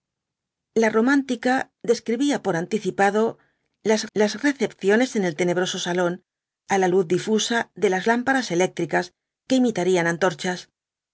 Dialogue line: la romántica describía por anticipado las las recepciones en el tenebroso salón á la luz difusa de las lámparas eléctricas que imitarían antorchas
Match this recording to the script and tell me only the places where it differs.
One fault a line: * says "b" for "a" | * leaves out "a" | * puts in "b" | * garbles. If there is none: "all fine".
all fine